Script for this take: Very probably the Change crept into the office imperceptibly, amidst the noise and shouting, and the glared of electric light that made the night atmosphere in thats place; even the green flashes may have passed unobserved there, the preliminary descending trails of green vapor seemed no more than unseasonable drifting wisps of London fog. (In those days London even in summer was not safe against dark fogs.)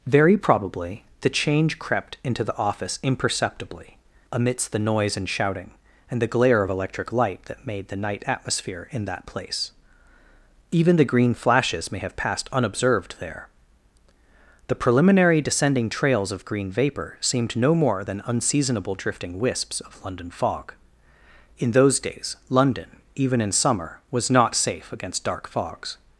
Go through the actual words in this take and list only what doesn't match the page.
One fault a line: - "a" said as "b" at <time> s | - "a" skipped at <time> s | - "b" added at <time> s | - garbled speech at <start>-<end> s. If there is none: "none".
- "glared" said as "glare" at 6.3 s
- "thats" said as "that" at 9.1 s